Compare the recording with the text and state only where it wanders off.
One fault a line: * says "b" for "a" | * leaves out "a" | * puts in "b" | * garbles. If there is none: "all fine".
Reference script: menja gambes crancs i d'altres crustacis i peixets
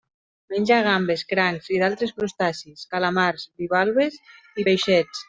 * puts in "calamars bivalves"